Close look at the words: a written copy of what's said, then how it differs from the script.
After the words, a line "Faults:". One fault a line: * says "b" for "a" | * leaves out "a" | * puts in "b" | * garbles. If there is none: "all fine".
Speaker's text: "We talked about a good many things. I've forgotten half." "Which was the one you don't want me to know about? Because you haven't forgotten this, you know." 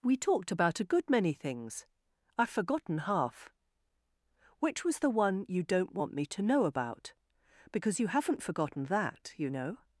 "We talked about a good many things. I've forgotten half." "Which was the one you don't want me to know about? Because you haven't forgotten that, you know."
Faults:
* says "that" for "this"